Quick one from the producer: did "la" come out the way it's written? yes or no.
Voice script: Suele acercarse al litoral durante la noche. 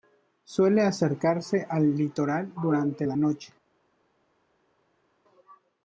yes